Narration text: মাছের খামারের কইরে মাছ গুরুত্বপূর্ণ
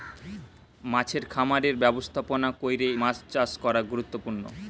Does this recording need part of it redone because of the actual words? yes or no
yes